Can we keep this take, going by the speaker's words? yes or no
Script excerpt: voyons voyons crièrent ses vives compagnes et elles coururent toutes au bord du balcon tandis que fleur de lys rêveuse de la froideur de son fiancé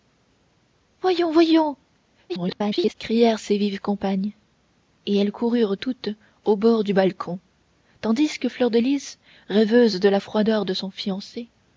no